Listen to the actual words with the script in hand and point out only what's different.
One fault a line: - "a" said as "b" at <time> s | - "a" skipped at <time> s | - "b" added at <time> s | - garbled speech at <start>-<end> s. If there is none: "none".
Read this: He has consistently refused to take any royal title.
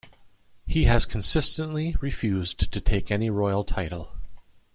none